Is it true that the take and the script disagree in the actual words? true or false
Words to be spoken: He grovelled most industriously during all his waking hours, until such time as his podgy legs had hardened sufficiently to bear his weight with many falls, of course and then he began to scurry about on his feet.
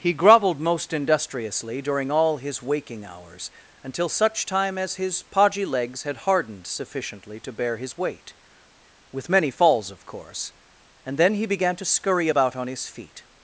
false